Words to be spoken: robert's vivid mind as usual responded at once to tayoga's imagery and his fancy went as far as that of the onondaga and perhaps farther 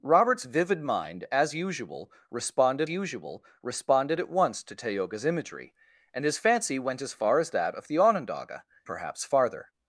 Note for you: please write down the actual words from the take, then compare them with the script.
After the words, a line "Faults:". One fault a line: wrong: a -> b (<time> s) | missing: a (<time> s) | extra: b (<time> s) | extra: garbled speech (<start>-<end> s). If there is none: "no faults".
robert's vivid mind as usual responded usual responded at once to tayoga's imagery and his fancy went as far as that of the onondaga perhaps farther
Faults:
extra: usual responded (2.9 s)
missing: and (8.6 s)